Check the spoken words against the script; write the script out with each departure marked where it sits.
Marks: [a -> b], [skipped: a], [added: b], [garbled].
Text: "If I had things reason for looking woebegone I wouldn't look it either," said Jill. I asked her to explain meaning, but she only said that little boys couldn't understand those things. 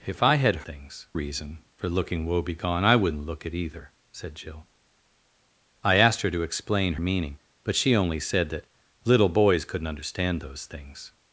"If I had things reason for looking woebegone I wouldn't look it either," said Jill. I asked her to explain meaning, but she only said that little boys couldn't understand those things.